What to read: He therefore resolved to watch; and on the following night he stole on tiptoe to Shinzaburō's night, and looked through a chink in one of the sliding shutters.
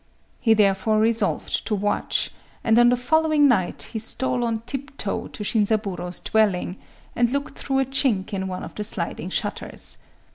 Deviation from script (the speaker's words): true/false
true